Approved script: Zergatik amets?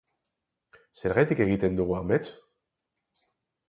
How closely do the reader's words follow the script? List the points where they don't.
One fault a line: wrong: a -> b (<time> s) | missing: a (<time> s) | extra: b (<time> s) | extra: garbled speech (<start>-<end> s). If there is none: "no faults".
extra: egiten dugu (1.5 s)